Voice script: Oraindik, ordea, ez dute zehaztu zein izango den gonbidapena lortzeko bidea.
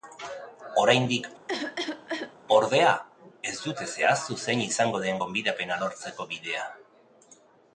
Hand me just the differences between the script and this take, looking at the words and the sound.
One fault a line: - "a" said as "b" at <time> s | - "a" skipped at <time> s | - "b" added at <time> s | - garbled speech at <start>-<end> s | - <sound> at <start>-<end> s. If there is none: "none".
- cough at 1.5-2.4 s